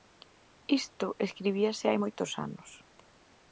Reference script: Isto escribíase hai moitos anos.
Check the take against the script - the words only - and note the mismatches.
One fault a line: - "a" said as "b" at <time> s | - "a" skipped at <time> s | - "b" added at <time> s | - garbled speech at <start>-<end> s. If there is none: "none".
none